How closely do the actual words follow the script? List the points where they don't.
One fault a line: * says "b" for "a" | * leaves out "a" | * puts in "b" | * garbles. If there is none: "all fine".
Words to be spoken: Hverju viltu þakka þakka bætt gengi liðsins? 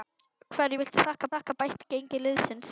all fine